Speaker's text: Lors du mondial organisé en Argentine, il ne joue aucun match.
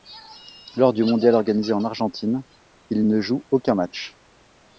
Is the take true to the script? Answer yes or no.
yes